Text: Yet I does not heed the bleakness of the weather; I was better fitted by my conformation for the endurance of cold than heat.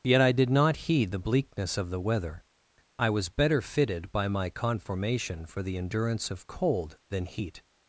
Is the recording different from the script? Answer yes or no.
yes